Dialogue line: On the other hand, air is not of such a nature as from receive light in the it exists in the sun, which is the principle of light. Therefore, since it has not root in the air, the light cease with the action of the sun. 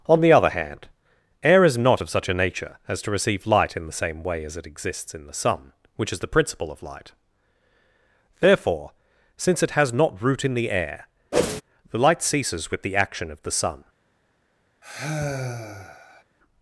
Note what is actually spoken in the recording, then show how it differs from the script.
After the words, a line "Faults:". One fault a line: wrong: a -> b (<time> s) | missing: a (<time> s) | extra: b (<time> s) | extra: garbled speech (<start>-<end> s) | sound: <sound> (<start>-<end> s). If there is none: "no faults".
On the other hand, air is not of such a nature as to receive light in the same way as it exists in the sun, which is the principle of light. Therefore, since it has not root in the air, the light ceases with the action of the sun.
Faults:
wrong: from -> to (3.0 s)
extra: same way as (3.9 s)
sound: whoosh (11.3-11.6 s)
wrong: cease -> ceases (12.2 s)
sound: sigh (14.8-16.2 s)